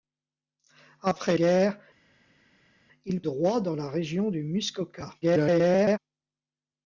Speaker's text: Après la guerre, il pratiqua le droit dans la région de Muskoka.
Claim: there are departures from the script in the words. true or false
true